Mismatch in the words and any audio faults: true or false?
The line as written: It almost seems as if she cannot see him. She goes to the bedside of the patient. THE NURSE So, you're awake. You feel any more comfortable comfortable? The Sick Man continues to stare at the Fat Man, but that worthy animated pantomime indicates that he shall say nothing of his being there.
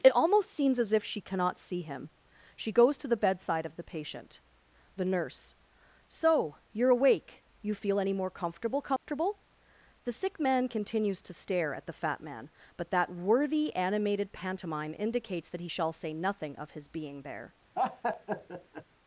true